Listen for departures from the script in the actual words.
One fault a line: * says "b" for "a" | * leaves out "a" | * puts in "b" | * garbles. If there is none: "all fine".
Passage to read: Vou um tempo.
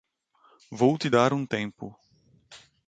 * puts in "te dar"